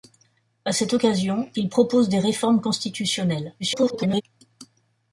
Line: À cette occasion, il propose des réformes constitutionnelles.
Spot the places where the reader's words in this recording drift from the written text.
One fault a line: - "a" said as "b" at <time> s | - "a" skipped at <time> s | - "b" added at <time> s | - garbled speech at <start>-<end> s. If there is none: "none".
- garbled speech at 3.6-4.2 s